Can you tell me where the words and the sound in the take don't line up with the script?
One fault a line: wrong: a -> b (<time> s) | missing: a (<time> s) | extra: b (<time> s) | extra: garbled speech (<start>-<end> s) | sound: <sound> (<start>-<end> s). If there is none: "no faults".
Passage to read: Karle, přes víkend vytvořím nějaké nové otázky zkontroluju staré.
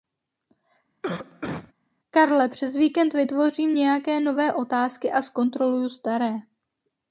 sound: cough (1.0-1.7 s)
extra: a (5.1 s)